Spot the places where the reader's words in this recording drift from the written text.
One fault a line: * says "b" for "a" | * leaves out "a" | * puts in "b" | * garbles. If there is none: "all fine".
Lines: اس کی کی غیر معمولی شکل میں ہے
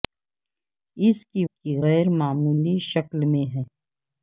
all fine